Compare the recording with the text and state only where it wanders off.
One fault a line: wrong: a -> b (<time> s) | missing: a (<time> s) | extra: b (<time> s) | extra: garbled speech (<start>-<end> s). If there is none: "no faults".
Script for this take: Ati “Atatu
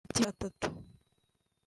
no faults